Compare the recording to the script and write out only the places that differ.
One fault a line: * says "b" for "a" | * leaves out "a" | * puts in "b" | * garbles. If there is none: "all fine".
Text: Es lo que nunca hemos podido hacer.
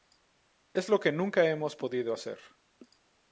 all fine